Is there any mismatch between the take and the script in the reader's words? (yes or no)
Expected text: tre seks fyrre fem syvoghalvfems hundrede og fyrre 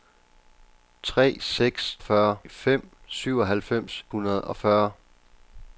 no